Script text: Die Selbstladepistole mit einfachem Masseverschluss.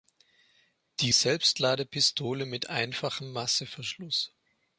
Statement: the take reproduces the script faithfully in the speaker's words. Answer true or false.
true